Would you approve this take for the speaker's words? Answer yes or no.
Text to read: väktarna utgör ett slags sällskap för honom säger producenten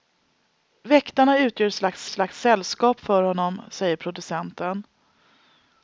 no